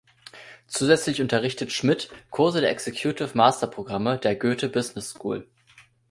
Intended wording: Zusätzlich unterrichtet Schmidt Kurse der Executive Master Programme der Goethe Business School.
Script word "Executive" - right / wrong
right